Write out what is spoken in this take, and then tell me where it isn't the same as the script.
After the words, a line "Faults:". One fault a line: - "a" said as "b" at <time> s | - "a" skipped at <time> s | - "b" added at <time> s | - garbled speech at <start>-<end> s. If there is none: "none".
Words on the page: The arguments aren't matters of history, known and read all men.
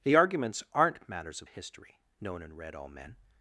The arguments aren't matters of history, known and read all men.
Faults:
none